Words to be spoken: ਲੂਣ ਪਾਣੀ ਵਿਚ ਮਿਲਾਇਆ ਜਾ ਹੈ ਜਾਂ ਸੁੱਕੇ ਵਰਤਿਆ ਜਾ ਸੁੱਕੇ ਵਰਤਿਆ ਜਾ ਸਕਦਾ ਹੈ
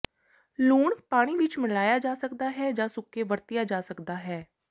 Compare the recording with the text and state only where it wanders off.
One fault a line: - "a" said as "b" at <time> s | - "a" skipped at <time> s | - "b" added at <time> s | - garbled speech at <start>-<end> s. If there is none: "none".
- "ਸਕਦਾ" added at 2.1 s
- "ਸੁੱਕੇ ਵਰਤਿਆ ਜਾ" skipped at 3.8 s